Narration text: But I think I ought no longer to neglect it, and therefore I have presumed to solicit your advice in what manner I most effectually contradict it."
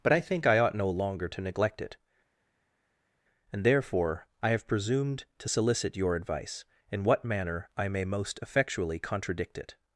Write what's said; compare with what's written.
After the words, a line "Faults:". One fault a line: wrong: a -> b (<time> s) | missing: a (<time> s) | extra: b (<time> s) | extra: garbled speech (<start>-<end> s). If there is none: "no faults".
But I think I ought no longer to neglect it, and therefore I have presumed to solicit your advice in what manner I may most effectually contradict it."
Faults:
extra: may (7.9 s)